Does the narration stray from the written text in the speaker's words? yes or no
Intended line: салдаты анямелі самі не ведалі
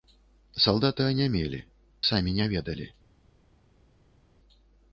no